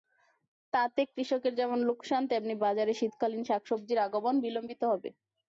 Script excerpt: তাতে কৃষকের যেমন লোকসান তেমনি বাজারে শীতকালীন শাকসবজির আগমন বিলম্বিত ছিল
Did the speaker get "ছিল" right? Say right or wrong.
wrong